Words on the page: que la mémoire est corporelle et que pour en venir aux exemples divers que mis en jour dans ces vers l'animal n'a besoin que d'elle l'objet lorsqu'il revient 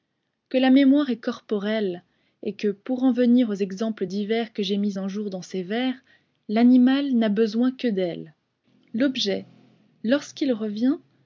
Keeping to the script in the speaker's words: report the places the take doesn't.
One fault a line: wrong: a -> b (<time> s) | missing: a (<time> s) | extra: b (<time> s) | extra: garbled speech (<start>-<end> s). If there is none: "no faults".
extra: j'ai (4.6 s)